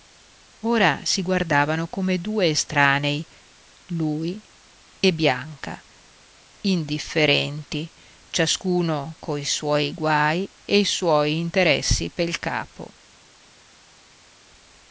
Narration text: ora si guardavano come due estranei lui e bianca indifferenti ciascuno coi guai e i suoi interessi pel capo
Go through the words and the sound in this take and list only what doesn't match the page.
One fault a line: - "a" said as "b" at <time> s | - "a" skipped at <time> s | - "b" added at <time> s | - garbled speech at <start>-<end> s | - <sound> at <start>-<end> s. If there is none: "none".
- "suoi" added at 9.4 s